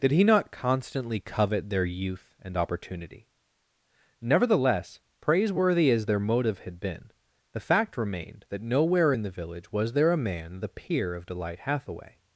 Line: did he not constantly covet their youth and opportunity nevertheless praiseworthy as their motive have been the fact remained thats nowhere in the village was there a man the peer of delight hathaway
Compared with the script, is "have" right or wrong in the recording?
wrong